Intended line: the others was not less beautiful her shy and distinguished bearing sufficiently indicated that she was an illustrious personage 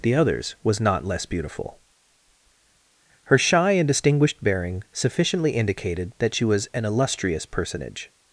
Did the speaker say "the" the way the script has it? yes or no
yes